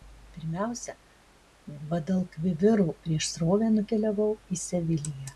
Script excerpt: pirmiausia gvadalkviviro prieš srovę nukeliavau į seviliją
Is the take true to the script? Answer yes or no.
yes